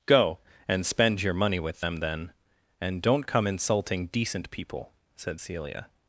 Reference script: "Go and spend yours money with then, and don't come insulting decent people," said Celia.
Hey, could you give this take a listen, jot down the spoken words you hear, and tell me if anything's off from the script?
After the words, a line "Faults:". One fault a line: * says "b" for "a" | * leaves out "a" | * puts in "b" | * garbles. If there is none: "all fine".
"Go and spend your money with them, then, and don't come insulting decent people," said Celia.
Faults:
* says "your" for "yours"
* puts in "them"